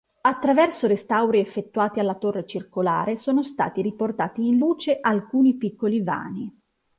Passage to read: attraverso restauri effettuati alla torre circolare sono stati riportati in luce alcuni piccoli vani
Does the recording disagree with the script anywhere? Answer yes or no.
no